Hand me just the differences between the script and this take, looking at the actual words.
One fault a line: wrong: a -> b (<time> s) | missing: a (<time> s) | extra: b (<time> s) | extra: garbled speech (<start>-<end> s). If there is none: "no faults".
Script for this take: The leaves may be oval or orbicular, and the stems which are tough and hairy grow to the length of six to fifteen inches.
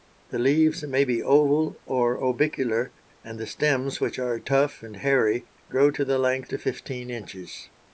missing: of six (6.5 s)